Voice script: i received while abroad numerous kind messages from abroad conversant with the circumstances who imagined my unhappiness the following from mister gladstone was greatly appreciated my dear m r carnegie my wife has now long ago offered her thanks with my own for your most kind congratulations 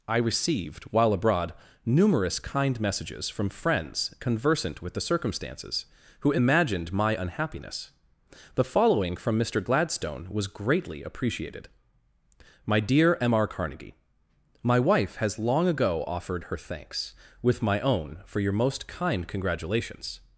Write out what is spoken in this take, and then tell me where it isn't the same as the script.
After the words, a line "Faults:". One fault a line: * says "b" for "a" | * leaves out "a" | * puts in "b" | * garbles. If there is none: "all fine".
i received while abroad numerous kind messages from friends conversant with the circumstances who imagined my unhappiness the following from mister gladstone was greatly appreciated my dear m r carnegie my wife has long ago offered her thanks with my own for your most kind congratulations
Faults:
* says "friends" for "abroad"
* leaves out "now"